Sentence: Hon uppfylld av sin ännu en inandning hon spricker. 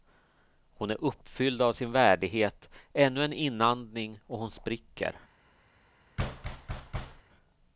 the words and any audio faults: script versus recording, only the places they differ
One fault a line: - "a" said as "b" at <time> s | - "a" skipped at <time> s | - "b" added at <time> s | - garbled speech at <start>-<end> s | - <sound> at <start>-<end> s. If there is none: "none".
- "är" added at 0.9 s
- "värdighet" added at 1.9 s
- "och" added at 4.3 s
- thud at 6.2-7.2 s